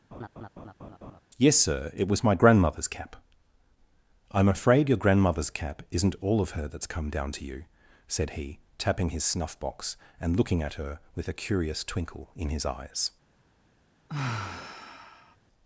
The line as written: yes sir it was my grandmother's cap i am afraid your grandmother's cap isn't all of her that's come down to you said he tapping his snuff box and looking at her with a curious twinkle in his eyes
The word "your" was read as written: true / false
true